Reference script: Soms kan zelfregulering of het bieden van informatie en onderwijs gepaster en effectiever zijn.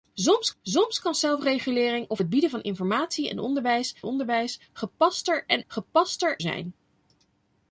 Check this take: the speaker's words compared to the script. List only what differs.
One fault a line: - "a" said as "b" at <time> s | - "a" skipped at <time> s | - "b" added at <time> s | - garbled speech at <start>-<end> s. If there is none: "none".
- "soms" added at 0.6 s
- "onderwijs" added at 4.0 s
- "effectiever" said as "gepaster" at 5.7 s